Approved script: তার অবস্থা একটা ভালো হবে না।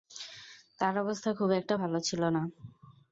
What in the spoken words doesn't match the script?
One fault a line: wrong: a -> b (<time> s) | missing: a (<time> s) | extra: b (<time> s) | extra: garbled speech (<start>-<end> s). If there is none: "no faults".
extra: খুব (1.3 s)
wrong: হবে -> ছিল (2.0 s)